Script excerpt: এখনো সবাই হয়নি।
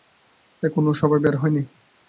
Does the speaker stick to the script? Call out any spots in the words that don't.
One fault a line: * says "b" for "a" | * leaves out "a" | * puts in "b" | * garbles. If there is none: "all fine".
* puts in "বের"